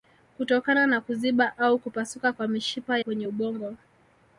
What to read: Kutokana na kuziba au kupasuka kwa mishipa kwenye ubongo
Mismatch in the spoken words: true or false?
false